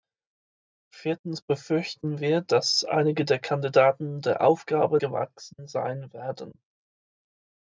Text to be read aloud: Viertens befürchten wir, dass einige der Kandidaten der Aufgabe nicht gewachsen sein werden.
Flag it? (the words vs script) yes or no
yes